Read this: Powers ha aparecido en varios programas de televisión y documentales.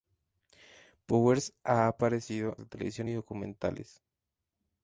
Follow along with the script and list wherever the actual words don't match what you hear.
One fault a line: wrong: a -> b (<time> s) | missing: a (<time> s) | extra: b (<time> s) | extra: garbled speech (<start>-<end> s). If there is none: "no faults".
missing: en varios programas (2.6 s)